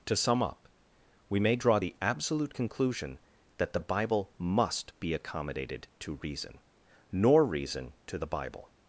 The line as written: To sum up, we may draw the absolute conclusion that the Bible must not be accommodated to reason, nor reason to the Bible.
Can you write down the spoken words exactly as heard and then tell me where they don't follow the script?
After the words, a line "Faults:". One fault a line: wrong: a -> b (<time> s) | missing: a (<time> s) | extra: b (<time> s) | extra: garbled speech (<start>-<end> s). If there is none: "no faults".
To sum up, we may draw the absolute conclusion that the Bible must be accommodated to reason, nor reason to the Bible.
Faults:
missing: not (4.9 s)